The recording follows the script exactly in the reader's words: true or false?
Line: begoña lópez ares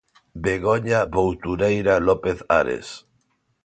false